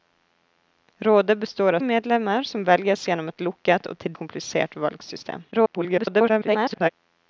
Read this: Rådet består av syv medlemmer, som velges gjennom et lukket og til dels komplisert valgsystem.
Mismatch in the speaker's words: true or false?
true